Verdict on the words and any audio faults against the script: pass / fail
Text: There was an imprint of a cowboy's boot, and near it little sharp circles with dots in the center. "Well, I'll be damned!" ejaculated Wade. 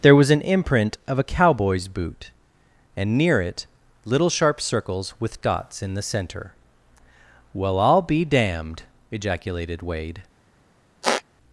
fail